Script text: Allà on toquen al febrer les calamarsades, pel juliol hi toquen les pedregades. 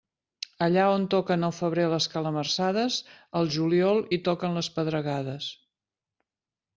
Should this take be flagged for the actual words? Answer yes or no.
yes